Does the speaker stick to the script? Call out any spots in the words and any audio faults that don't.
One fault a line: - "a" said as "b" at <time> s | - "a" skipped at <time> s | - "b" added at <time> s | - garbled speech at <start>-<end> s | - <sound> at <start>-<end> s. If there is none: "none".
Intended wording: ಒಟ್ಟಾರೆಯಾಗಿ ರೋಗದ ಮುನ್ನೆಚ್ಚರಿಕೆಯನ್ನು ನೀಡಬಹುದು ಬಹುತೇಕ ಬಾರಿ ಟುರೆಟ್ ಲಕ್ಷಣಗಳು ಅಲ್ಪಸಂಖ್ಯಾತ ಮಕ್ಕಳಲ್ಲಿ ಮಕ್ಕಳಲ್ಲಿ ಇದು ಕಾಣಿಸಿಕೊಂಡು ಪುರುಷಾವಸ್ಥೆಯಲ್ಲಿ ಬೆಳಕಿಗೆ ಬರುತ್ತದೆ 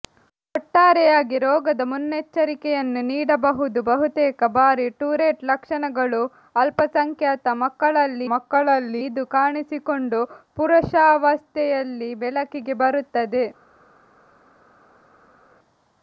none